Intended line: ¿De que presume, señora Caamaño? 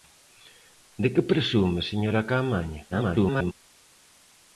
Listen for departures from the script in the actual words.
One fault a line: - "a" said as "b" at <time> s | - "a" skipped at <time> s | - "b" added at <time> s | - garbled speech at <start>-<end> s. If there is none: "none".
- garbled speech at 2.9-3.5 s